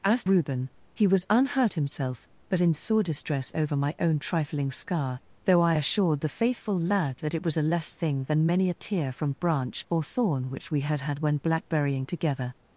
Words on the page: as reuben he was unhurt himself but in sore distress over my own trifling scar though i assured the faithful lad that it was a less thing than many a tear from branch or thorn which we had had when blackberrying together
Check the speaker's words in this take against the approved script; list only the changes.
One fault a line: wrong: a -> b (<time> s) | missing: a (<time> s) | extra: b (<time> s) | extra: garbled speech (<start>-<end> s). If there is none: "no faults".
no faults